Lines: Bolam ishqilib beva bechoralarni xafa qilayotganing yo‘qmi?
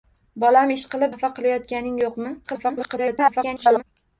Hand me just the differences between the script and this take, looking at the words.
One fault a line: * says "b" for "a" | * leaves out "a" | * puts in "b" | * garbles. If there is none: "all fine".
* leaves out "beva bechoralarni"
* garbles